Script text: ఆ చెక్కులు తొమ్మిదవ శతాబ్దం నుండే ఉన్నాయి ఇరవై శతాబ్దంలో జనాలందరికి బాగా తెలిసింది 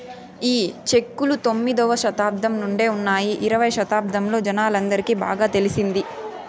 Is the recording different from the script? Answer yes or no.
yes